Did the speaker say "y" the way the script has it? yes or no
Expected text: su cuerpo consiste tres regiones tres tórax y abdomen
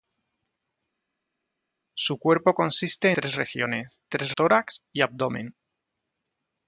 yes